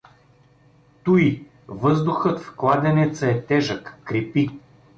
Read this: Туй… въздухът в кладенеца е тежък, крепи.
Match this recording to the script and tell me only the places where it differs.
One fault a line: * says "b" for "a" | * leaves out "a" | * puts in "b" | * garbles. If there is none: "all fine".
all fine